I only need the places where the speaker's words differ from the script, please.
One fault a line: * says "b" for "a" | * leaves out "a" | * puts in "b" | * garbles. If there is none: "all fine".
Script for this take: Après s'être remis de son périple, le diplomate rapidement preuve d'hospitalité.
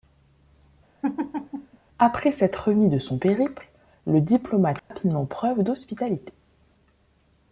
all fine